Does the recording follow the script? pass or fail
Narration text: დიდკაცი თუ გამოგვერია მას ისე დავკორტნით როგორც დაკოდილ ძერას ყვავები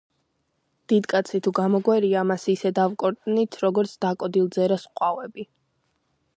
pass